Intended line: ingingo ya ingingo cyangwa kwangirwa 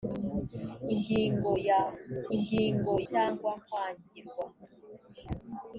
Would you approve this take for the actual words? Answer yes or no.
yes